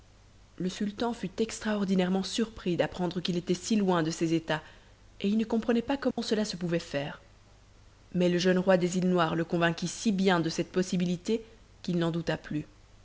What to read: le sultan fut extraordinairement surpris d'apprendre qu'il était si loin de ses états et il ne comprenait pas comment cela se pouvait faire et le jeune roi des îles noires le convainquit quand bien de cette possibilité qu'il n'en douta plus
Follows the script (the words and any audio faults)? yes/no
no